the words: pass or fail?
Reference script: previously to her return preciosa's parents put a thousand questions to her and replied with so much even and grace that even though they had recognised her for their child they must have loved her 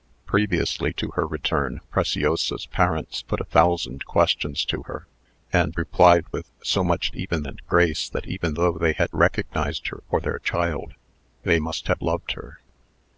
pass